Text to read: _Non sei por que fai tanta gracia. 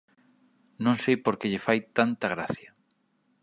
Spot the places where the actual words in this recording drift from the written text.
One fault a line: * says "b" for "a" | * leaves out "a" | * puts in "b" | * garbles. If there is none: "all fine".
* puts in "lle"